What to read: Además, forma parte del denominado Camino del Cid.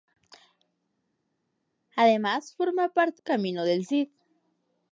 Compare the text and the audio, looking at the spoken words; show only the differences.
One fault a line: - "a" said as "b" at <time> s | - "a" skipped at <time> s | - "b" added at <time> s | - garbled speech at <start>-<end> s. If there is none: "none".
- "del denominado" skipped at 3.2 s